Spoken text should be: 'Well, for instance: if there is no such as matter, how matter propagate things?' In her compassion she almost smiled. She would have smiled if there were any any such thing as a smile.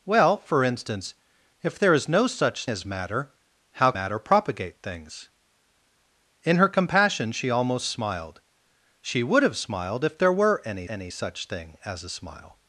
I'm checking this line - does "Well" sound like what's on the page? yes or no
yes